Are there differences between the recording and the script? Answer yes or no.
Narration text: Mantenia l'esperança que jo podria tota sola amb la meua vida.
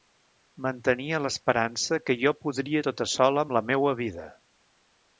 no